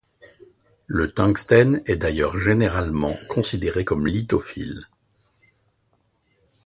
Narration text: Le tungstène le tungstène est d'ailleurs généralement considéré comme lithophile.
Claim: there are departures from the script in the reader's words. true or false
true